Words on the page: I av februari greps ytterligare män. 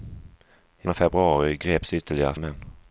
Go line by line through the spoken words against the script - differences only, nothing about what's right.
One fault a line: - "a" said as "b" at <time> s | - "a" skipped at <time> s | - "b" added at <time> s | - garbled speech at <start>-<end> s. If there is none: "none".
none